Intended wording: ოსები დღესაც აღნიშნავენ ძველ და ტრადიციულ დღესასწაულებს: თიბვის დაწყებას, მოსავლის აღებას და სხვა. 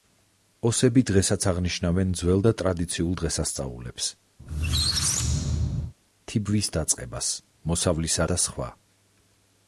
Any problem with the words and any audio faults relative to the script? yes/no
yes